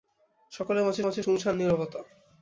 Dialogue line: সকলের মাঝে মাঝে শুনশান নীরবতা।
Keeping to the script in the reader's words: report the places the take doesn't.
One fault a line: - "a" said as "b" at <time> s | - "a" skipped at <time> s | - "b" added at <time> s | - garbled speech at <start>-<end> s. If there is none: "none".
none